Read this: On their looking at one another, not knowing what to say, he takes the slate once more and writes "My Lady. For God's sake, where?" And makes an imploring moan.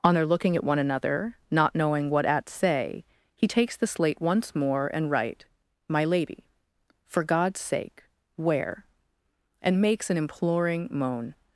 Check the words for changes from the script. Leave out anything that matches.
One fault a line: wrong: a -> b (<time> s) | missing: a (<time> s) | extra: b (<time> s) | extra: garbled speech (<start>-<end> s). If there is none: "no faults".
wrong: to -> at (2.2 s)
wrong: writes -> write (5.1 s)